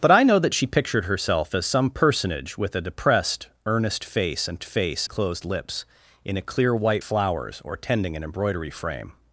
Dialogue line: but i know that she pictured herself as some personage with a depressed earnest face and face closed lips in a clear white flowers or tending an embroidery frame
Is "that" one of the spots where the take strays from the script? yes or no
no